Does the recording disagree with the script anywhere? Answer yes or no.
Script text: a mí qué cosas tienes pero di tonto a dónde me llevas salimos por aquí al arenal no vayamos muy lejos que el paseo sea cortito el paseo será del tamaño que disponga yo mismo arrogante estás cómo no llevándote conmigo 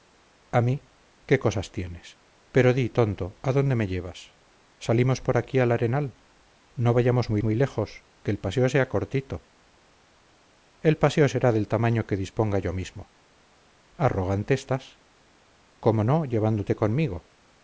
yes